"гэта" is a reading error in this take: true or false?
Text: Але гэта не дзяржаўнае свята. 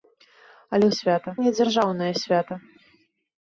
true